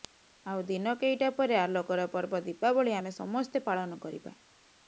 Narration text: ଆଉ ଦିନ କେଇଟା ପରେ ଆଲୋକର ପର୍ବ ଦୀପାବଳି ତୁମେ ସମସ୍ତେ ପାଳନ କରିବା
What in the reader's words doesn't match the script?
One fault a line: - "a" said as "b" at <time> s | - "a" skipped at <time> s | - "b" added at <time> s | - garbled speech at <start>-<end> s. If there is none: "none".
- "ତୁମେ" said as "ଆମେ" at 3.0 s